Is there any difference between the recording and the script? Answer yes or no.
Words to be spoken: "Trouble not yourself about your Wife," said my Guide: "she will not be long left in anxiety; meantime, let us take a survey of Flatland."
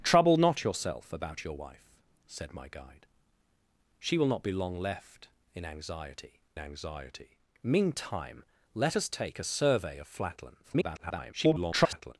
yes